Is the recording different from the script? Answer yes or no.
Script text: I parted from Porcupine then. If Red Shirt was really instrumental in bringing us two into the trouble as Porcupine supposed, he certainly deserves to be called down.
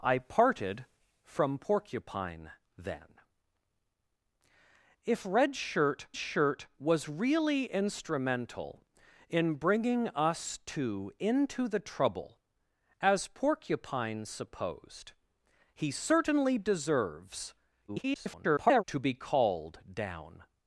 yes